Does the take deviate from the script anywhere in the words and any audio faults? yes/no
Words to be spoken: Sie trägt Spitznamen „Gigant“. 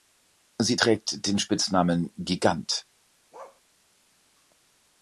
yes